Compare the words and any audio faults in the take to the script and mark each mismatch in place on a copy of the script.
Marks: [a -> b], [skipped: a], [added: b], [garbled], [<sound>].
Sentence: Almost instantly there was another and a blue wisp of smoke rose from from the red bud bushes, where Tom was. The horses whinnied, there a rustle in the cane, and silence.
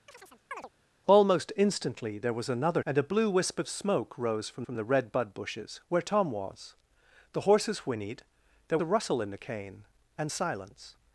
[chirp] Almost instantly there was another and a blue wisp of smoke rose from from the red bud bushes, where Tom was. The horses whinnied, there a rustle in the cane, and silence.